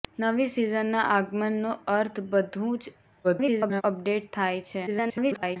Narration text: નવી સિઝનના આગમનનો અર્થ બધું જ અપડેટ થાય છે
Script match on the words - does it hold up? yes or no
no